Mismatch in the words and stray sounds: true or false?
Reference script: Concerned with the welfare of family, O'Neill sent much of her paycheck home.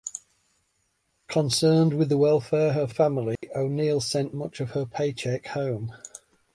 true